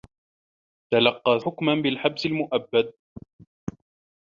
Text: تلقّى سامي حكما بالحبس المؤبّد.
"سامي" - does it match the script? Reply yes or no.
no